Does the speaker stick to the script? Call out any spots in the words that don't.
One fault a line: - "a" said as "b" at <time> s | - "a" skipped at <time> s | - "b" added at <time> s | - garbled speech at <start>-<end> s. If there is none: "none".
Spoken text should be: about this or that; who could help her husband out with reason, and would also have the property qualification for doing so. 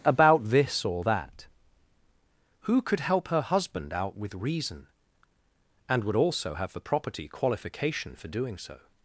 none